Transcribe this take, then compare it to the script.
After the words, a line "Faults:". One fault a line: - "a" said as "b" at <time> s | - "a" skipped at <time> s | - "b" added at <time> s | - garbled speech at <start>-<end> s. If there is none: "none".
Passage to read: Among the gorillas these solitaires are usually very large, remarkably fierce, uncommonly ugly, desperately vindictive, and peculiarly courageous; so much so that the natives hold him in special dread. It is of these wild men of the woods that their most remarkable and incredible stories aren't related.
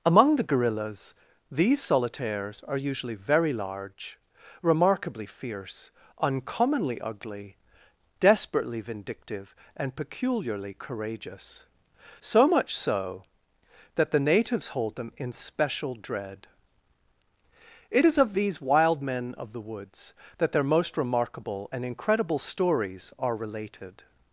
Among the gorillas these solitaires are usually very large, remarkably fierce, uncommonly ugly, desperately vindictive, and peculiarly courageous; so much so that the natives hold them in special dread. It is of these wild men of the woods that their most remarkable and incredible stories are related.
Faults:
- "him" said as "them" at 14.9 s
- "aren't" said as "are" at 23.2 s